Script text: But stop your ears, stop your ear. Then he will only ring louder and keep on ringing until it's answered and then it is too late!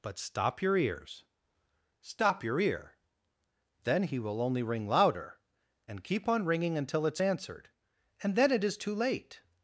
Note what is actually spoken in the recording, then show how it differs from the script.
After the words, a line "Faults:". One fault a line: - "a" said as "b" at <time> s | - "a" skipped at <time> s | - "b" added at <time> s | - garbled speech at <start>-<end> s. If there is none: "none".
But stop your ears, stop your ear. Then he will only ring louder and keep on ringing until it's answered and then it is too late!
Faults:
none